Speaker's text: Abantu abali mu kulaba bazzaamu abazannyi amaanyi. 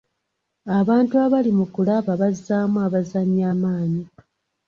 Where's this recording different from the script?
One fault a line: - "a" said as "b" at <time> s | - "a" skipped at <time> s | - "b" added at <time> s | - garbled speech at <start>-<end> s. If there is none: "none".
none